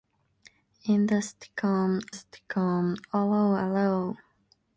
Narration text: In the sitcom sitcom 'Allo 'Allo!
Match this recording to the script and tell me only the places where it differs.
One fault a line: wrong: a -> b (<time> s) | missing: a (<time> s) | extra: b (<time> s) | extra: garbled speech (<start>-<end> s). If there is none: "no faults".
no faults